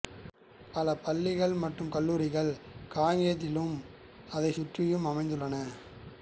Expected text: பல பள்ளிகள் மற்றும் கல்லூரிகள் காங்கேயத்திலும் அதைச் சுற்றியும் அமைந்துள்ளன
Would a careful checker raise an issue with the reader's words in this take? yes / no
no